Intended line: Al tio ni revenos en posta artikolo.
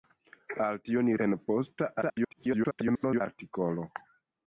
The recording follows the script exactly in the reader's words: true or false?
false